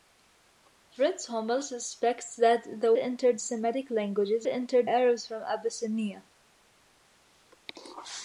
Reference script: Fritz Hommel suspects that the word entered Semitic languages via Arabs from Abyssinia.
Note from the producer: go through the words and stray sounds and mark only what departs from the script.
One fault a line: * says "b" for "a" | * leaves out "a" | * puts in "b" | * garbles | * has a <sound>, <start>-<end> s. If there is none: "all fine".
* leaves out "word"
* says "entered" for "via"